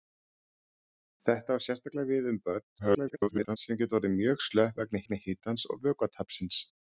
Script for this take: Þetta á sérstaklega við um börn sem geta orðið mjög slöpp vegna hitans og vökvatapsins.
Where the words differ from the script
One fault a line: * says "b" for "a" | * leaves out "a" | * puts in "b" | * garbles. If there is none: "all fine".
* garbles
* puts in "vegna"